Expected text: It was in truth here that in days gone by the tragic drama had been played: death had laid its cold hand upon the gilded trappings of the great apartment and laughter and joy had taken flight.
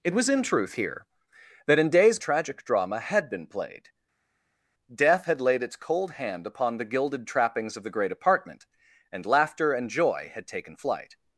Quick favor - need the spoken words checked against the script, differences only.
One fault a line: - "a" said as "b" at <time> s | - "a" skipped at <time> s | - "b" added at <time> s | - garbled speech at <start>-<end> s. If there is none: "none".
- "gone by the" skipped at 2.2 s